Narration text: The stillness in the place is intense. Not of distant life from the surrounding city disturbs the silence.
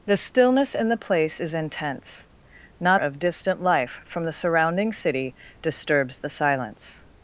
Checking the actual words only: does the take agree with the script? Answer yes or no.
yes